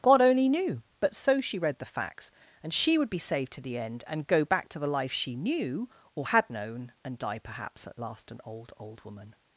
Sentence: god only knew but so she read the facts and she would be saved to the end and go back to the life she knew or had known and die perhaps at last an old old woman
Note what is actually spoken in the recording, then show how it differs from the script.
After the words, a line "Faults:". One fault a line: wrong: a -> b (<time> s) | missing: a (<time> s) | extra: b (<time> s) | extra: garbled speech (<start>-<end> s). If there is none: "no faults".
god only knew but so she read the facts and she would be saved to the end and go back to the life she knew or had known and die perhaps at last an old old woman
Faults:
no faults